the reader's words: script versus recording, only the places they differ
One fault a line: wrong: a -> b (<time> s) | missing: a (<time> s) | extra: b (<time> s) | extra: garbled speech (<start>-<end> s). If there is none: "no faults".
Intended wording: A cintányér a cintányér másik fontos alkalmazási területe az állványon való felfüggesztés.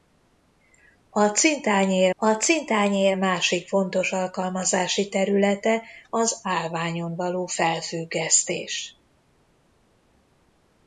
no faults